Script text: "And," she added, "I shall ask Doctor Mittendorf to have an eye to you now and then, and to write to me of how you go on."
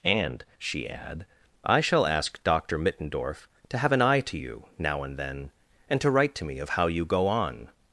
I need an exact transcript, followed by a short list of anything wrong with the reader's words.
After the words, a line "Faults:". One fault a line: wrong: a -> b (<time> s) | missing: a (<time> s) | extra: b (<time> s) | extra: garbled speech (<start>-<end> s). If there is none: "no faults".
"And," she add, "I shall ask Doctor Mittendorf to have an eye to you now and then, and to write to me of how you go on."
Faults:
wrong: added -> add (0.9 s)